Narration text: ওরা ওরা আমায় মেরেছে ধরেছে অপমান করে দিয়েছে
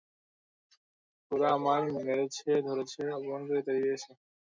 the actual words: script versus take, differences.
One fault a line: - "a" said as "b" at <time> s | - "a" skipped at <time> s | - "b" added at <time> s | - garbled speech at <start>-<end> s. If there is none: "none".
- "ওরা" skipped at 1.5 s
- "তাড়িয়ে" added at 3.7 s